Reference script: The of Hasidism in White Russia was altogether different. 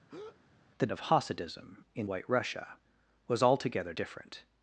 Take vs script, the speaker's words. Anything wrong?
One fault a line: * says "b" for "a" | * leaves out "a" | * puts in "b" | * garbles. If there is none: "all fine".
all fine